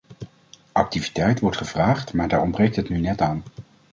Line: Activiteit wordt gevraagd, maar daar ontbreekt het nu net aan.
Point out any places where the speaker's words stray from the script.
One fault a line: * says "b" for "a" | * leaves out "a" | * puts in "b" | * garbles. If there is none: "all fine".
all fine